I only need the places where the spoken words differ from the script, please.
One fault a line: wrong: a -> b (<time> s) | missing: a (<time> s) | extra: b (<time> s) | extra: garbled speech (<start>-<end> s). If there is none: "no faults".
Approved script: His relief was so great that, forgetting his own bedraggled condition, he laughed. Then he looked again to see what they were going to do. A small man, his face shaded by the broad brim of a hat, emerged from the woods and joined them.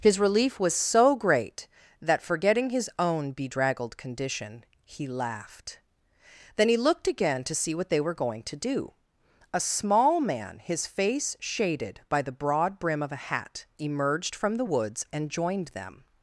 no faults